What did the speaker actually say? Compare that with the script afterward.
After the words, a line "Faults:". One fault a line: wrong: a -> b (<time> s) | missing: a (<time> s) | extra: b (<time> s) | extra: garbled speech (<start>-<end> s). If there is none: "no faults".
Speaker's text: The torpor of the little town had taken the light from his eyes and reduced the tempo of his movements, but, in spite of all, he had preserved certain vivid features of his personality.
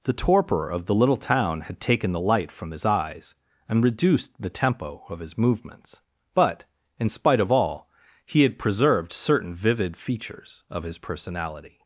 The torpor of the little town had taken the light from his eyes and reduced the tempo of his movements, but, in spite of all, he had preserved certain vivid features of his personality.
Faults:
no faults